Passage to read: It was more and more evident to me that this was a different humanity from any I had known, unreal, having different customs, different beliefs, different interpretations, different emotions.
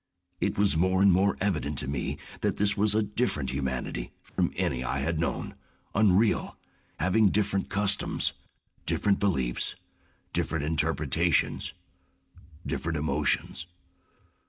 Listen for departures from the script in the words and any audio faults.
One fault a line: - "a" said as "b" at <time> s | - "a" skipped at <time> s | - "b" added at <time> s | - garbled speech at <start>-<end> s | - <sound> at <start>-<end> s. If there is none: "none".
- dropout at 4.3-4.4 s